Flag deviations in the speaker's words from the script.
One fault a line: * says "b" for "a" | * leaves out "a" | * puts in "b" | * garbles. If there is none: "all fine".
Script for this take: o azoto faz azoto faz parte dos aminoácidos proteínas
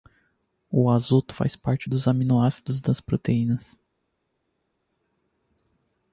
* leaves out "azoto faz"
* puts in "das"